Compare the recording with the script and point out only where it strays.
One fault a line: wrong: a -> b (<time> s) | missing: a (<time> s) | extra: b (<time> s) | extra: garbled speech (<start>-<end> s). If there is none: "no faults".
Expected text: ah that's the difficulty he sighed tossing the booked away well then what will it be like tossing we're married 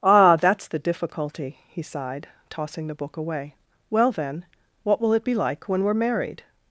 wrong: booked -> book (3.0 s)
wrong: tossing -> when (5.7 s)